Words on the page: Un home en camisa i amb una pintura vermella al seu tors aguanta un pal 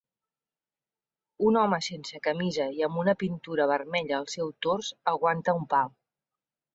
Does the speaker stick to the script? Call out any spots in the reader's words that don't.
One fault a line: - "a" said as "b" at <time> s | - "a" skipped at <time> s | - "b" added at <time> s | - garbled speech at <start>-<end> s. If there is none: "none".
- "en" said as "sense" at 1.9 s